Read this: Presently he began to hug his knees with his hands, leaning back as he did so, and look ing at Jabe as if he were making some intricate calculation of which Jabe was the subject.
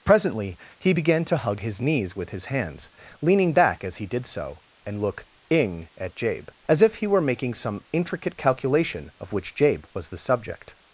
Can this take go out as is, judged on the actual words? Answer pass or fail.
pass